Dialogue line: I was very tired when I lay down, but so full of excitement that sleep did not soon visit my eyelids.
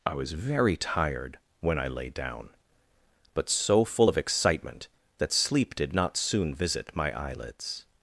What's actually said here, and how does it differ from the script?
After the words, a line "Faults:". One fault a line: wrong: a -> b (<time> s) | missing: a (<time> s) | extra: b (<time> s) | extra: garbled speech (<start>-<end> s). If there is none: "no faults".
I was very tired when I lay down, but so full of excitement that sleep did not soon visit my eyelids.
Faults:
no faults